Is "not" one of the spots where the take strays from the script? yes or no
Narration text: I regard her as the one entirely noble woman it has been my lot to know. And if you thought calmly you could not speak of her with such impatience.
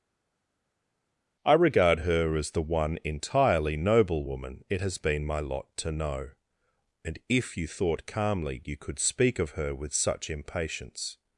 yes